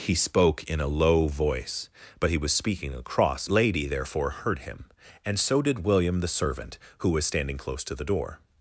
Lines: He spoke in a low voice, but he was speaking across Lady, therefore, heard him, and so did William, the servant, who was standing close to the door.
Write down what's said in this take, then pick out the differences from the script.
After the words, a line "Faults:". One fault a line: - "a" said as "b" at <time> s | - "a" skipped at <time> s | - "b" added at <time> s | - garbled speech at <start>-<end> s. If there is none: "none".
He spoke in a low voice, but he was speaking across Lady, therefore, heard him, and so did William, the servant, who was standing close to the door.
Faults:
none